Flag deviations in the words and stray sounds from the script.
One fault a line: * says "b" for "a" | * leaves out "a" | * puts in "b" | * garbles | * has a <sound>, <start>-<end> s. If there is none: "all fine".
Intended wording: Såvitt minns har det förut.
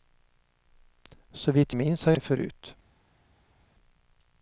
all fine